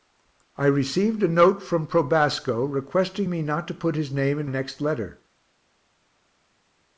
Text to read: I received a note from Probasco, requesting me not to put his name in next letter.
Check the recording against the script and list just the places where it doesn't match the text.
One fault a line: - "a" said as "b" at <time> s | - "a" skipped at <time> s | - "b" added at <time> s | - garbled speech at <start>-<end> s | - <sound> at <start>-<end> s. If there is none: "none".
none